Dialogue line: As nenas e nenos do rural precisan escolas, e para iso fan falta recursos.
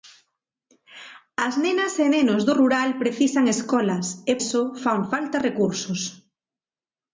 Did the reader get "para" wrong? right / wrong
wrong